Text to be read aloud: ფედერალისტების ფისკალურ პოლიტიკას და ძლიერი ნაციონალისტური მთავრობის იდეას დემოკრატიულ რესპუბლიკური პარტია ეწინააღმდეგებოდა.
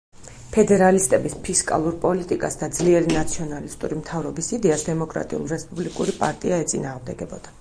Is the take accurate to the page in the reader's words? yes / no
yes